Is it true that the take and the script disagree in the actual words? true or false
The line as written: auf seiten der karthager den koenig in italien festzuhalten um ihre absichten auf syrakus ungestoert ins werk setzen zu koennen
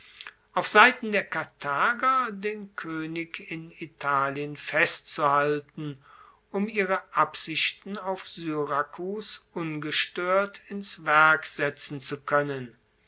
false